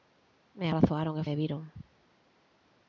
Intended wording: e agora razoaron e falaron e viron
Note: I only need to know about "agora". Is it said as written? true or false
false